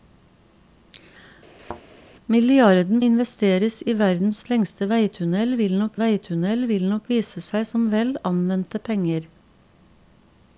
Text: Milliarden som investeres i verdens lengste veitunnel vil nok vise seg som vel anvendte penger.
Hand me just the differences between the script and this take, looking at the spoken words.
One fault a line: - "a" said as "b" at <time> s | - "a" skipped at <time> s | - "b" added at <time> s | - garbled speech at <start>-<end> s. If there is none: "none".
- "som" skipped at 3.0 s
- "veitunnel vil nok" added at 6.0 s